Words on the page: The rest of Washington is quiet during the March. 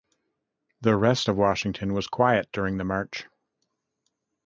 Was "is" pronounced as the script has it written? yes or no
no